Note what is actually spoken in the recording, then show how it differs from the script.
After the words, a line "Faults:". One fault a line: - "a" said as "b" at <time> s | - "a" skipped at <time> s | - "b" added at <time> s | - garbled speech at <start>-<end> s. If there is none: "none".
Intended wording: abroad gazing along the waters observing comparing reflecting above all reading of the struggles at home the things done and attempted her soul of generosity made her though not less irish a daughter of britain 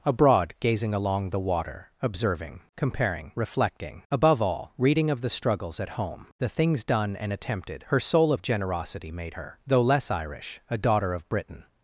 abroad gazing along the water observing comparing reflecting above all reading of the struggles at home the things done and attempted her soul of generosity made her though less irish a daughter of britain
Faults:
- "waters" said as "water" at 1.4 s
- "not" skipped at 9.8 s